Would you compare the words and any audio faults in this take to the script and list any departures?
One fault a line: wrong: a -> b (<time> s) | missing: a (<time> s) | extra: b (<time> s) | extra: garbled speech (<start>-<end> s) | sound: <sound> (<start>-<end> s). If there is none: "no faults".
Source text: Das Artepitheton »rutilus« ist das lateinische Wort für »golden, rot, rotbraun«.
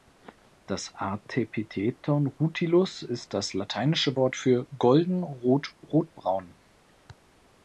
no faults